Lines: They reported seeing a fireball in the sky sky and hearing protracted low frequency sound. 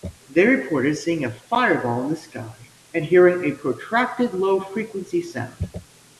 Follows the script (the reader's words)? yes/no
no